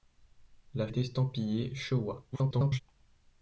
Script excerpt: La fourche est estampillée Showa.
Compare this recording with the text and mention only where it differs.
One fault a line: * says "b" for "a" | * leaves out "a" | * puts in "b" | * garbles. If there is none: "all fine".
* leaves out "fourche"
* garbles